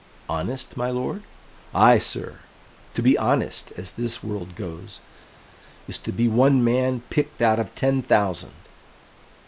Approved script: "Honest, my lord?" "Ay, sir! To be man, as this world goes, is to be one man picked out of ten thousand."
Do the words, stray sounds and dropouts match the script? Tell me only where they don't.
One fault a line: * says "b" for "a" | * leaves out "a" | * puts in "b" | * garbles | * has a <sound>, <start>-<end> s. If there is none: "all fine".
* says "honest" for "man"